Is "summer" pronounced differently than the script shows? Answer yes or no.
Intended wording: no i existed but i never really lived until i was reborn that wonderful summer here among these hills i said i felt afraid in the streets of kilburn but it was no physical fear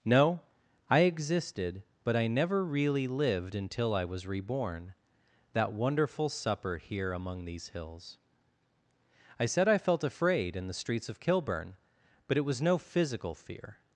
yes